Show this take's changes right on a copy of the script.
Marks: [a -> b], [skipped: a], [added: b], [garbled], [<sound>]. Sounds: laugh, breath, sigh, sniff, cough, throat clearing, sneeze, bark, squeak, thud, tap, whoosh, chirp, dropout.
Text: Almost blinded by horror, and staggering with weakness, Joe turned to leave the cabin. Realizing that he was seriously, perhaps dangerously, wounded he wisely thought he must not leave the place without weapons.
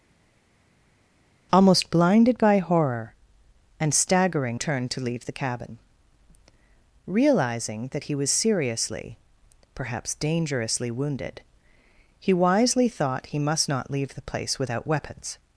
Almost blinded by horror, and staggering [skipped: with weakness, Joe] turned to leave the cabin. Realizing that he was seriously, perhaps dangerously, wounded he wisely thought he must not leave the place without weapons.